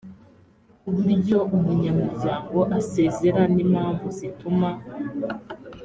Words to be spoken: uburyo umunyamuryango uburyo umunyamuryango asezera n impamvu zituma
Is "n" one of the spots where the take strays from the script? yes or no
no